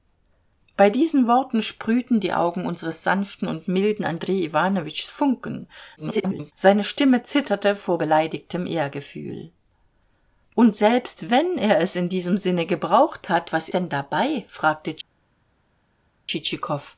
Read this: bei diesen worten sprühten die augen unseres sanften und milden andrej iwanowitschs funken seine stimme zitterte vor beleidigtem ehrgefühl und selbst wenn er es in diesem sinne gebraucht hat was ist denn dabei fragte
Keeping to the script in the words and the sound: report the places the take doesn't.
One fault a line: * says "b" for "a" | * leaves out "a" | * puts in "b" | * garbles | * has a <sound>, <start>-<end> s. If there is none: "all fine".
* garbles
* leaves out "ist"